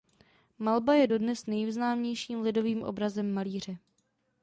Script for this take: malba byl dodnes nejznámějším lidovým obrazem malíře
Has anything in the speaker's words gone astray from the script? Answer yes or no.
yes